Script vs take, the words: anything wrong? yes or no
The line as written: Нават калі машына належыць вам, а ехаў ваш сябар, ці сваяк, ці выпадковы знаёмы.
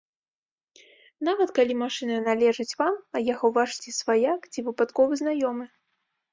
yes